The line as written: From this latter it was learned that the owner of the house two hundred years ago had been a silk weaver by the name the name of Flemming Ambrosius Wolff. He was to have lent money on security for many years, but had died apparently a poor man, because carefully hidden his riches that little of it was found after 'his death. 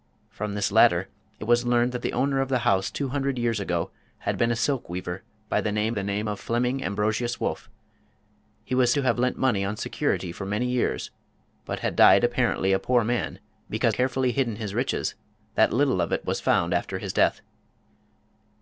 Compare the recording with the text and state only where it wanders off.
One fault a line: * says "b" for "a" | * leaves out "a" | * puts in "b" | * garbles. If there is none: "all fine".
all fine